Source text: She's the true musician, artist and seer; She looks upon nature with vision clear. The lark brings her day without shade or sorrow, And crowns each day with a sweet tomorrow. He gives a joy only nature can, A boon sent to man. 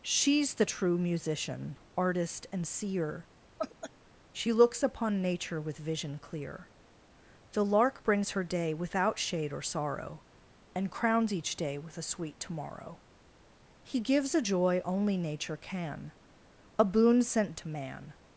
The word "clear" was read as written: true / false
true